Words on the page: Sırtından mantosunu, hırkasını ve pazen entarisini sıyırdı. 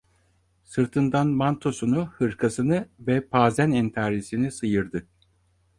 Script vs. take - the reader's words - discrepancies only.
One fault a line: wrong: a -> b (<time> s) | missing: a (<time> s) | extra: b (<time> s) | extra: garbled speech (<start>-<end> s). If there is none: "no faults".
no faults